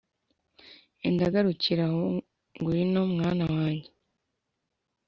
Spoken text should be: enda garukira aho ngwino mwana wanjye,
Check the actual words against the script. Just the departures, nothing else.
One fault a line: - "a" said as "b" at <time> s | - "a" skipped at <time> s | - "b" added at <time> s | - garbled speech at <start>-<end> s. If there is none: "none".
none